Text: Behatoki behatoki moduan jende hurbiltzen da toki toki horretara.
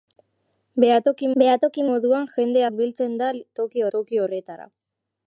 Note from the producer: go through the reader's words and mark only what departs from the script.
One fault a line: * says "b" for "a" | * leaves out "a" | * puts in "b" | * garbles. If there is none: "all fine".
all fine